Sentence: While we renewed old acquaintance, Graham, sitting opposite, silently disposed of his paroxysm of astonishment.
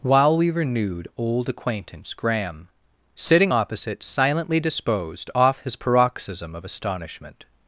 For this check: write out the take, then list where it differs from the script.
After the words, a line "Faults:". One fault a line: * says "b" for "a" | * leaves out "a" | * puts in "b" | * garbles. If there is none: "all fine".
While we renewed old acquaintance, Graham, sitting opposite, silently disposed off his paroxysm of astonishment.
Faults:
* says "off" for "of"